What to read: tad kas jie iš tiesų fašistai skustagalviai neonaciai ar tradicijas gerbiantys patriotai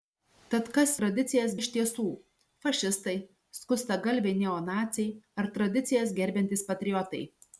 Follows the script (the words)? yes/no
no